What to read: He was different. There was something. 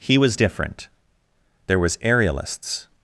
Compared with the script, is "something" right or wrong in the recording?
wrong